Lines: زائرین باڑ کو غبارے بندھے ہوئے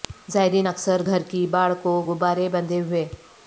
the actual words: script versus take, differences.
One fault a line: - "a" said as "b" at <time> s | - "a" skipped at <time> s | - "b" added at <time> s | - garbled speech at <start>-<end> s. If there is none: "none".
- "اکثر گھر کی" added at 0.7 s